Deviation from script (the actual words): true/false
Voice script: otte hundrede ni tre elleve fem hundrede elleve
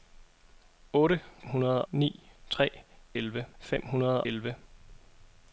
false